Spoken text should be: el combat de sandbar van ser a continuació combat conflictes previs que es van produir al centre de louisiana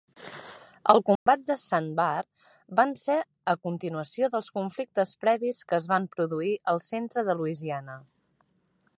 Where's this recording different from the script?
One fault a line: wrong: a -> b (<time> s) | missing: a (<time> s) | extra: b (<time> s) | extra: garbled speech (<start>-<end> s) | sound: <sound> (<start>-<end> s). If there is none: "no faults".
sound: dropout (1.2-1.3 s)
wrong: combat -> dels (4.3 s)